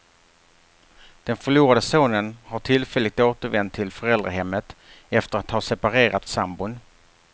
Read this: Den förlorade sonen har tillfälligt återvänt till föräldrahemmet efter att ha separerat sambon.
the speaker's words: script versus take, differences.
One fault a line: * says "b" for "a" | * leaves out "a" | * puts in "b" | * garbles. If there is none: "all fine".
all fine